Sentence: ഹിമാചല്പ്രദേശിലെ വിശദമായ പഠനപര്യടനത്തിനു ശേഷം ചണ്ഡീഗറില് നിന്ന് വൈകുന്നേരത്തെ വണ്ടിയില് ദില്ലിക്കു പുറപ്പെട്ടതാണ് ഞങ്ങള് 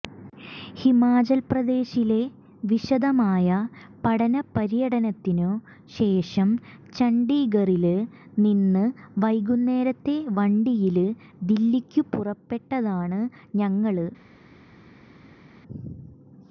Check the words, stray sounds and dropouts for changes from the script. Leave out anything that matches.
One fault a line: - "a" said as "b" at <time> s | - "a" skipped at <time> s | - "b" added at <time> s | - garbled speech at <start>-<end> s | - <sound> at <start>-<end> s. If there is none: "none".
none